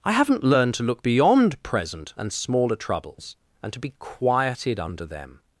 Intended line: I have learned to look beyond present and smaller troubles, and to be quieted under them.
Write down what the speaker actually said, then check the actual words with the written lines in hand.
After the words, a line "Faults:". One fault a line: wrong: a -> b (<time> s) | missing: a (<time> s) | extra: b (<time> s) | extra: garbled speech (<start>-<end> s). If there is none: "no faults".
I haven't learned to look beyond present and smaller troubles, and to be quieted under them.
Faults:
wrong: have -> haven't (0.1 s)